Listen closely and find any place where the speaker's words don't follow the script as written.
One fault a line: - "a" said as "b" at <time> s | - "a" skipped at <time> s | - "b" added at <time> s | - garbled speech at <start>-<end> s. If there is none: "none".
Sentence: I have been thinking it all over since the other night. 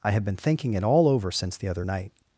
none